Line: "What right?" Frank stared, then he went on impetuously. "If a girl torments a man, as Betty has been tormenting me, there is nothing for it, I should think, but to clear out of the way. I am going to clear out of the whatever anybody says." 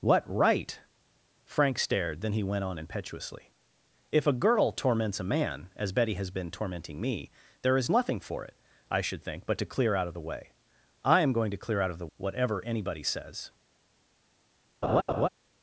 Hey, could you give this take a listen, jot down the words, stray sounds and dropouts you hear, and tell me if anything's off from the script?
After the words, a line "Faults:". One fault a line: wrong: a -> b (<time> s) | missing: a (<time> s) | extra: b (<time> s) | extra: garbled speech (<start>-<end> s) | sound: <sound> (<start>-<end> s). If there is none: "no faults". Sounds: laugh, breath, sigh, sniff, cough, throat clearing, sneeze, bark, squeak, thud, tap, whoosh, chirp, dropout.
"What right?" Frank stared, then he went on impetuously. "If a girl torments a man, as Betty has been tormenting me, there is nothing for it, I should think, but to clear out of the way. I am going to clear out of the whatever anybody says."
Faults:
sound: laugh (14.8-15.3 s)